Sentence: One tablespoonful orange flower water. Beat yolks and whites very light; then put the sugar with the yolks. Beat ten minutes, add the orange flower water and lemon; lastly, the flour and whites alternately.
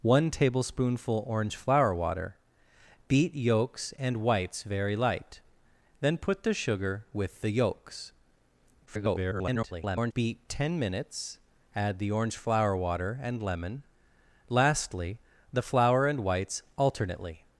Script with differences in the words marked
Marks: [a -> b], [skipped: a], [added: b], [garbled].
One tablespoonful orange flower water. Beat yolks and whites very light; then put the sugar with the yolks. [garbled] Beat ten minutes, add the orange flower water and lemon; lastly, the flour and whites alternately.